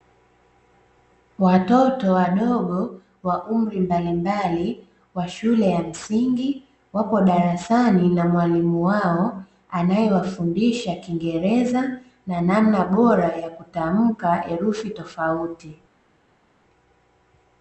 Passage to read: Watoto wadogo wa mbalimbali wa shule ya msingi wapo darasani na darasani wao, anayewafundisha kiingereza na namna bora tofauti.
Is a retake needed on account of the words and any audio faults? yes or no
yes